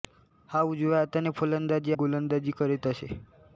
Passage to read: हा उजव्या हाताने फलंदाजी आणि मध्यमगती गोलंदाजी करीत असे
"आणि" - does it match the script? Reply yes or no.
no